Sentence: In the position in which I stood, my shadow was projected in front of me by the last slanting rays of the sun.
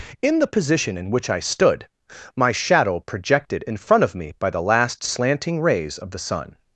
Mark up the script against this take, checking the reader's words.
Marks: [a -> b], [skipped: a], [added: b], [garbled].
In the position in which I stood, my shadow [skipped: was] projected in front of me by the last slanting rays of the sun.